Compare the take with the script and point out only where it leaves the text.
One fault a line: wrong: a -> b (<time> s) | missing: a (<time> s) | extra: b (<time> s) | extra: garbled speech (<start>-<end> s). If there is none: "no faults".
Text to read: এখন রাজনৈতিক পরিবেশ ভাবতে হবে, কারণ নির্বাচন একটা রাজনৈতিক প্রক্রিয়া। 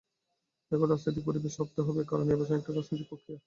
no faults